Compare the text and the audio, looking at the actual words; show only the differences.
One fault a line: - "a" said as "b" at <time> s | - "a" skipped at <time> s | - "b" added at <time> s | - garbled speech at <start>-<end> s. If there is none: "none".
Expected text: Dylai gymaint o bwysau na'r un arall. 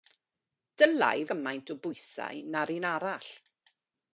none